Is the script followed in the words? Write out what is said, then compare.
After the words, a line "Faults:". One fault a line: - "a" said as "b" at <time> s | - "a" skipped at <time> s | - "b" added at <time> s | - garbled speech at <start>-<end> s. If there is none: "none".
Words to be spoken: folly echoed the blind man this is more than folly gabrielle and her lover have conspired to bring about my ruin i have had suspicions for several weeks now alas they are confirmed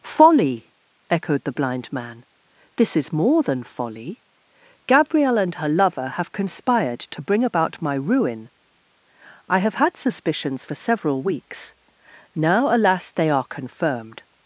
folly echoed the blind man this is more than folly gabrielle and her lover have conspired to bring about my ruin i have had suspicions for several weeks now alas they are confirmed
Faults:
none